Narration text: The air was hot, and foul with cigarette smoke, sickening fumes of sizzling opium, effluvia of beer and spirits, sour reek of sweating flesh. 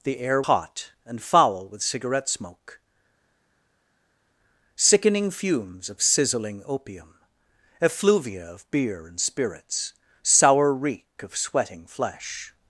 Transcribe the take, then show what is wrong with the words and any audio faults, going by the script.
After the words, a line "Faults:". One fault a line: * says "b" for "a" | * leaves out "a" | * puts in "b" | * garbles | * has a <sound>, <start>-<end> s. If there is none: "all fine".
The air hot, and foul with cigarette smoke, sickening fumes of sizzling opium, effluvia of beer and spirits, sour reek of sweating flesh.
Faults:
* leaves out "was"